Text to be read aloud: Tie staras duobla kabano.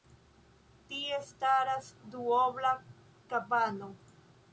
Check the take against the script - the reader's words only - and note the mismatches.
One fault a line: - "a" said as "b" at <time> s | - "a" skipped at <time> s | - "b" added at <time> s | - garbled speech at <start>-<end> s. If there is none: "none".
none